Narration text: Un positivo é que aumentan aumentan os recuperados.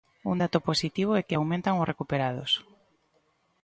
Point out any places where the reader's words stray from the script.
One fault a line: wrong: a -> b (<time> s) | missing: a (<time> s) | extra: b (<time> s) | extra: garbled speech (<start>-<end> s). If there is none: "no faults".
extra: dato (0.4 s)
missing: aumentan (1.8 s)